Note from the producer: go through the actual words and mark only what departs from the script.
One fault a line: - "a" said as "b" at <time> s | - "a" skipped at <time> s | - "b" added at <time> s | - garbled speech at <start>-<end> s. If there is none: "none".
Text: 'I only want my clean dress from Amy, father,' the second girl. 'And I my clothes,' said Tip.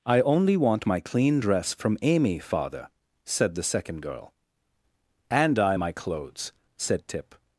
- "said" added at 3.2 s